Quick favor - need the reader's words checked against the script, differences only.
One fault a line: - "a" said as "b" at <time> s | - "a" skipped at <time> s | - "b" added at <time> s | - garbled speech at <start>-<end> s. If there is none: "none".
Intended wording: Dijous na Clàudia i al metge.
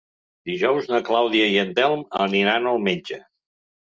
- "en Telm aniran" added at 1.6 s